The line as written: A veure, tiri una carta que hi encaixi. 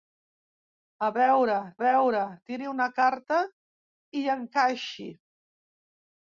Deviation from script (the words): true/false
true